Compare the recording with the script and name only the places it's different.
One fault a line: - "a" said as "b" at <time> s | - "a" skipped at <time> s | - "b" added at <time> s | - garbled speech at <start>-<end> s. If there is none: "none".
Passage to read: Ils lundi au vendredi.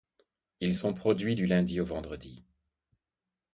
- "sont produits du" added at 0.7 s